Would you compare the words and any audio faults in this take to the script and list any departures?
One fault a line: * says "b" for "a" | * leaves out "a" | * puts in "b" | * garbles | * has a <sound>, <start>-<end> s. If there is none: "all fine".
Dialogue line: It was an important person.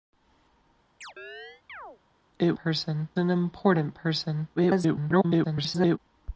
* has a chirp, 1.0-2.0 s
* says "person" for "was"
* garbles